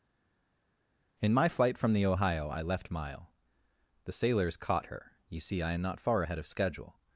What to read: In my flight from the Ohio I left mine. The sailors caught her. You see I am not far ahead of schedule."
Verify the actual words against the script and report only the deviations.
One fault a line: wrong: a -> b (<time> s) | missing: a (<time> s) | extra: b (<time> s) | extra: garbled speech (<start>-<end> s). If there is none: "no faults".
wrong: mine -> mile (2.9 s)